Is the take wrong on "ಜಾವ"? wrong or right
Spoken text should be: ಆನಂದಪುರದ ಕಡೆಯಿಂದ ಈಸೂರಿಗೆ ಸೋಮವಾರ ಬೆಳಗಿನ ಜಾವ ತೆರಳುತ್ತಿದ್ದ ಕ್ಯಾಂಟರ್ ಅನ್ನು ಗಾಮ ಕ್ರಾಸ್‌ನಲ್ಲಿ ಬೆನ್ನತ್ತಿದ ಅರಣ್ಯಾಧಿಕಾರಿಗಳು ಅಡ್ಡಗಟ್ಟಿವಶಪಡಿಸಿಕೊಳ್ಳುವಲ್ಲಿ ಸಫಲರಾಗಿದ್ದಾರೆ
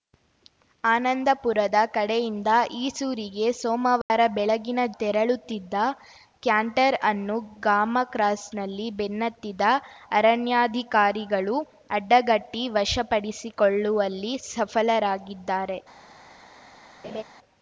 wrong